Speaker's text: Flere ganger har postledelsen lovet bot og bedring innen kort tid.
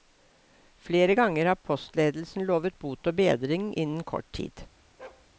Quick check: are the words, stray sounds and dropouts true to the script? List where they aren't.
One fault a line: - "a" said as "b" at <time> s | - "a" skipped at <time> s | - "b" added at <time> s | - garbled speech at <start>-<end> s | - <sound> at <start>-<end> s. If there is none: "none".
- bark at 5.0-5.3 s